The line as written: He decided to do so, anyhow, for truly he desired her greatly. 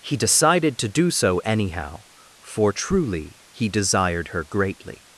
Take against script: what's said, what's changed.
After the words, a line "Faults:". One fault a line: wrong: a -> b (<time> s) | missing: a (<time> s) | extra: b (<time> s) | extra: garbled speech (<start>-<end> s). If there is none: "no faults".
He decided to do so, anyhow, for truly he desired her greatly.
Faults:
no faults